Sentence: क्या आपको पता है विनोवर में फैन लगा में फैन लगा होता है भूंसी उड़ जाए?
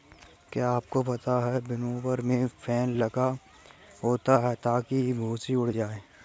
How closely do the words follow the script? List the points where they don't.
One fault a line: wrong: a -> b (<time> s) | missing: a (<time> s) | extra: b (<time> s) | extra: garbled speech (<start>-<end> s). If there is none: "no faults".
missing: में फैन लगा (3.4 s)
extra: ताकि (4.5 s)